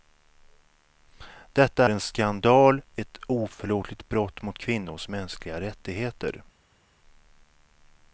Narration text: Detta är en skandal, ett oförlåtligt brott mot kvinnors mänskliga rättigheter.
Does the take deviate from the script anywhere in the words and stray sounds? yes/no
yes